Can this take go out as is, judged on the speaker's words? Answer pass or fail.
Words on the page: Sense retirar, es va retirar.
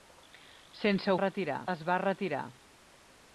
pass